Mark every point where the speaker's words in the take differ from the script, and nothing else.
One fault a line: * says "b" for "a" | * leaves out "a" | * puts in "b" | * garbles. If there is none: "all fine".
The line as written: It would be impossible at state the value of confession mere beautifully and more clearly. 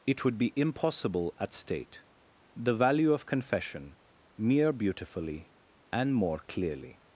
all fine